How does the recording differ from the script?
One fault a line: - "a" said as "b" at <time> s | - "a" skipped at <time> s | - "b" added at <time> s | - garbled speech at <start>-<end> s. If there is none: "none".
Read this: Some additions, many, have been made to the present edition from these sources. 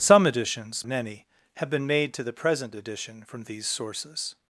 none